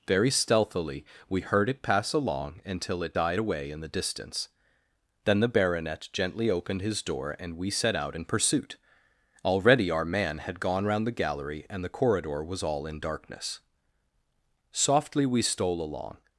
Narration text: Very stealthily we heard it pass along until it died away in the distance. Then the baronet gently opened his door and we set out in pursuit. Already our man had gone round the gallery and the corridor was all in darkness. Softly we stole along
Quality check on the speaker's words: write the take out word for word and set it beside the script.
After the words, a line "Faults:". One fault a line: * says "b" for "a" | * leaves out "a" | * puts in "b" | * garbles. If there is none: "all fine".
Very stealthily we heard it pass along until it died away in the distance. Then the baronet gently opened his door and we set out in pursuit. Already our man had gone round the gallery and the corridor was all in darkness. Softly we stole along
Faults:
all fine